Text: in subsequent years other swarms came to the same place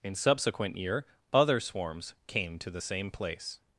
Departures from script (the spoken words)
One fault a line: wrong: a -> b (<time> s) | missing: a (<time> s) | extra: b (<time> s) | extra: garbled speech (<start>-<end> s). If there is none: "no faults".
wrong: years -> year (0.8 s)